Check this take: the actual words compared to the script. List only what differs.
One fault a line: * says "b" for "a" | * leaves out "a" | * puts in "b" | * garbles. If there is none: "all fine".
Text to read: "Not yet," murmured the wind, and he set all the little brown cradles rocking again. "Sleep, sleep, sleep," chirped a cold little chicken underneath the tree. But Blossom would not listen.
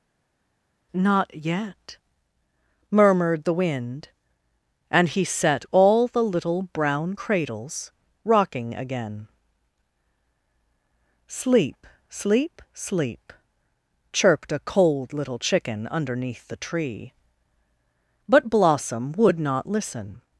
all fine